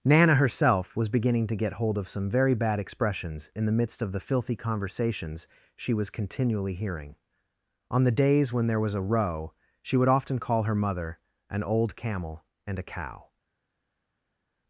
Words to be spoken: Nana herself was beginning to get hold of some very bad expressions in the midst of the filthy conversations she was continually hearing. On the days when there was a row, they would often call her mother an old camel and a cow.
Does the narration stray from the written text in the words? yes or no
yes